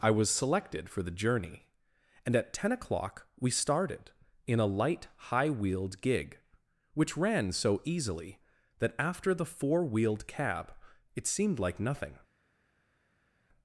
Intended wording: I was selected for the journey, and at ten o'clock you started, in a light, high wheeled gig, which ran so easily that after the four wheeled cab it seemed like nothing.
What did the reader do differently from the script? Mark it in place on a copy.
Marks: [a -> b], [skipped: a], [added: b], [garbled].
I was selected for the journey, and at ten o'clock [you -> we] started, in a light, high wheeled gig, which ran so easily that after the four wheeled cab it seemed like nothing.